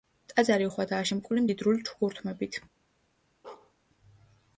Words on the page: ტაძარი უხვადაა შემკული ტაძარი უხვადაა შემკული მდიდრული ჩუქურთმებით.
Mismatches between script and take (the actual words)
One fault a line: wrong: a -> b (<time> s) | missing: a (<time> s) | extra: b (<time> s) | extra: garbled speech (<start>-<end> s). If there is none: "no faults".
missing: ტაძარი უხვადაა შემკული (1.4 s)